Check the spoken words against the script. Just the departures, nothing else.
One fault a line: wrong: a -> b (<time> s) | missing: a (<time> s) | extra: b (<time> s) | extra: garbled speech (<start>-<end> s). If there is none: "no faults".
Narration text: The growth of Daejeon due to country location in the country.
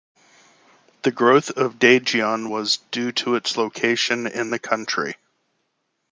extra: was (2.5 s)
wrong: country -> its (3.3 s)